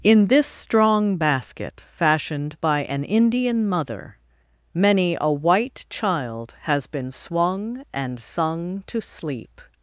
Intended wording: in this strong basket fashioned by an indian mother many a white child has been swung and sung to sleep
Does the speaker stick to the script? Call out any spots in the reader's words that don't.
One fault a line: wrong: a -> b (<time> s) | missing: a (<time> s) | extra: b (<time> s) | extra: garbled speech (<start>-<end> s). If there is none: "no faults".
no faults